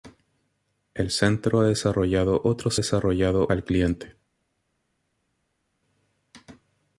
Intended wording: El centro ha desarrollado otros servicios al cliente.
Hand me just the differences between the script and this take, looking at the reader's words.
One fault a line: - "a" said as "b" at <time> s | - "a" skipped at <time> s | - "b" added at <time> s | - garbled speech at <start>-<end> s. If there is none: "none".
- "servicios" said as "desarrollado" at 2.7 s